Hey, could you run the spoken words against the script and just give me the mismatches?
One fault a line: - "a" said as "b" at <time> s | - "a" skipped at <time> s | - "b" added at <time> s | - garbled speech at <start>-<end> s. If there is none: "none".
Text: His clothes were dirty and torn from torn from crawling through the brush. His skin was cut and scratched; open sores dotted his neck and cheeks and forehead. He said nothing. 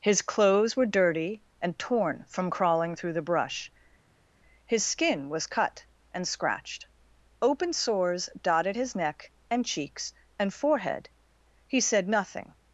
- "torn from" skipped at 2.5 s